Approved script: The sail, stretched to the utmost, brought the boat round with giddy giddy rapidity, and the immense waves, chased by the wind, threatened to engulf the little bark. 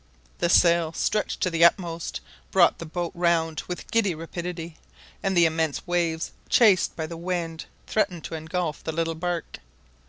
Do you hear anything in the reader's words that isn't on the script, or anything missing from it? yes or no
yes